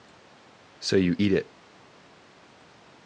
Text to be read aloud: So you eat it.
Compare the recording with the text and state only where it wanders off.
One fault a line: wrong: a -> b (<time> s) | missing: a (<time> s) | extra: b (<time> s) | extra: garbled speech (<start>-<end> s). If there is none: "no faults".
no faults